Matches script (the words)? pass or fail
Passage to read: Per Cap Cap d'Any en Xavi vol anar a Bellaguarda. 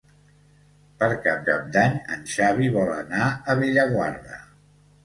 pass